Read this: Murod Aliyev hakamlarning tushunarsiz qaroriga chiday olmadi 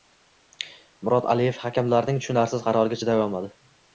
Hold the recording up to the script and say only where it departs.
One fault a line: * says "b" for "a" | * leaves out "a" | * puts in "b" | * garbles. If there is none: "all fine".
all fine